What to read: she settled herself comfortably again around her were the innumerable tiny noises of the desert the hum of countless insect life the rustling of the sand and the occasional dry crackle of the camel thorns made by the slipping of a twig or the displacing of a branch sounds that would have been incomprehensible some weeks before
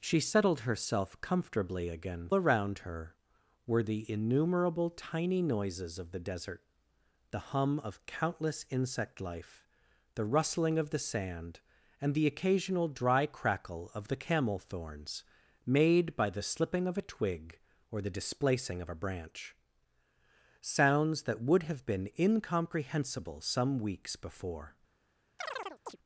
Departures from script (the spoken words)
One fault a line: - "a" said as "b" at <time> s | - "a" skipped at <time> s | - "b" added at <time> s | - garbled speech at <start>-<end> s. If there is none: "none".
none